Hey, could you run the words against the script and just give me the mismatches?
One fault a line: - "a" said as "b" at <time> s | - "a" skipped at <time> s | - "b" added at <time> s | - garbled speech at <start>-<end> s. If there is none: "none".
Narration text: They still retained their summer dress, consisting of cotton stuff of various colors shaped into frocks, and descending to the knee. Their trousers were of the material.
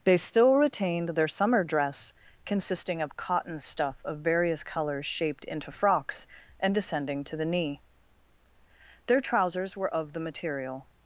none